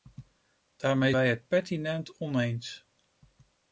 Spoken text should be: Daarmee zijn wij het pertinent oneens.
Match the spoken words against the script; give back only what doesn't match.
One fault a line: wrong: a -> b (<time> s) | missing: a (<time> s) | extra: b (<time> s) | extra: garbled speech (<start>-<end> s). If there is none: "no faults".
missing: zijn (1.1 s)